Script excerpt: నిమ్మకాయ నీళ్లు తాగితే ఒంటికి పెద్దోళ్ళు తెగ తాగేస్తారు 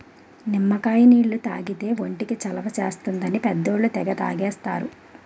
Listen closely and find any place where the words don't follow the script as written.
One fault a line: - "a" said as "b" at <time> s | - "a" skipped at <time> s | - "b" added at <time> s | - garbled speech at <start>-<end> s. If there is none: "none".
- "చలవ చేస్తుందని" added at 2.3 s